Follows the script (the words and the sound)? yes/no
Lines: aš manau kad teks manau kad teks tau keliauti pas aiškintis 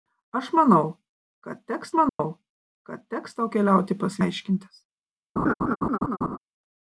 no